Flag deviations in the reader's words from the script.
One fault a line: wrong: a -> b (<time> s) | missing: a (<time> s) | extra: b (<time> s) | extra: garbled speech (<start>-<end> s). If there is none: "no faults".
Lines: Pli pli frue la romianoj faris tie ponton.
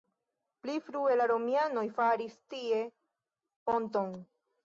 missing: pli (0.8 s)